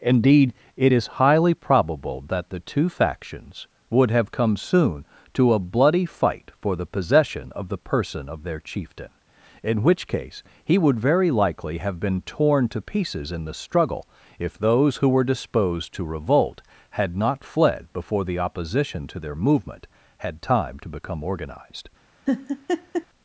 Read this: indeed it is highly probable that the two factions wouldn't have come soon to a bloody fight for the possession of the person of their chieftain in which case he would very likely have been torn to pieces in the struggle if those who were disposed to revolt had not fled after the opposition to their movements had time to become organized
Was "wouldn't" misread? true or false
true